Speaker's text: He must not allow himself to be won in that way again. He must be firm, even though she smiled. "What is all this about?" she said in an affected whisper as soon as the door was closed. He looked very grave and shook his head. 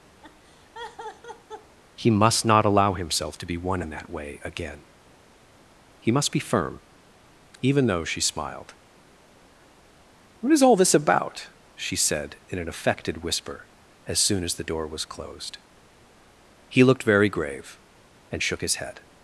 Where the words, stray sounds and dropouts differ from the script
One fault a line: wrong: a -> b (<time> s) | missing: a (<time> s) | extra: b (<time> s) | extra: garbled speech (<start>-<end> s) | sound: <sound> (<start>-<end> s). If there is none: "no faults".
sound: laugh (0.2-1.8 s)